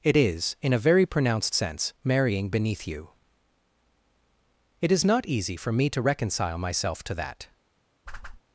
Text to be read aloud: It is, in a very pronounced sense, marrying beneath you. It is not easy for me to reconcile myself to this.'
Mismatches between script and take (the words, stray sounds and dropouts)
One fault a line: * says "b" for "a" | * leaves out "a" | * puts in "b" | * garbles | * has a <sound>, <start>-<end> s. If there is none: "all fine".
* says "that" for "this"
* has a whoosh, 8.1-8.4 s